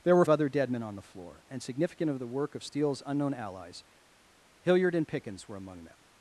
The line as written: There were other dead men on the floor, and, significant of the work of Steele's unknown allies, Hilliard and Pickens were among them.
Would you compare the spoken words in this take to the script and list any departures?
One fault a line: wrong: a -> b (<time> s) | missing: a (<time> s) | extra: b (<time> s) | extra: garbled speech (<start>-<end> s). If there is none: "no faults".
no faults